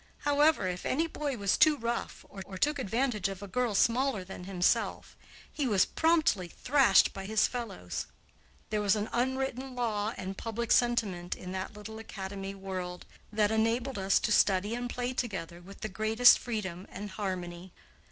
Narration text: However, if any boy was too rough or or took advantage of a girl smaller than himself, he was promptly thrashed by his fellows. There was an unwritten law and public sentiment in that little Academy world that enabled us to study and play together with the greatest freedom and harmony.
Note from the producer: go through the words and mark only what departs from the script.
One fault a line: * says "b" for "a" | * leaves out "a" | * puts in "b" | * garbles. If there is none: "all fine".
all fine